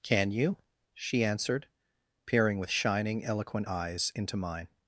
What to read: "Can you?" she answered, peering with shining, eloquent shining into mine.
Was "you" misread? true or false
false